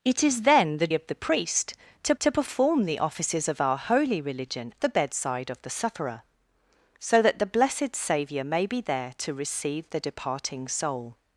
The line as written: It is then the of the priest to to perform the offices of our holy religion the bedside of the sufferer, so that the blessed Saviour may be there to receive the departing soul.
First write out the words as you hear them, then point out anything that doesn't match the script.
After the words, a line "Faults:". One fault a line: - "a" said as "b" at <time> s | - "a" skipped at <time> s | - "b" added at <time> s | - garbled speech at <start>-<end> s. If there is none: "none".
It is then the of the priest to to perform the offices of our holy religion the bedside of the sufferer, so that the blessed Saviour may be there to receive the departing soul.
Faults:
none